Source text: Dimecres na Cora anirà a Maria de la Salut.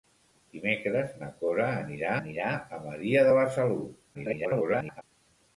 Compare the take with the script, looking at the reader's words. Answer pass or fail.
fail